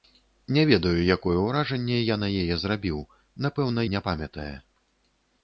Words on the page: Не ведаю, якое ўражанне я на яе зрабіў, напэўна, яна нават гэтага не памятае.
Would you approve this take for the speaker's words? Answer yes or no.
no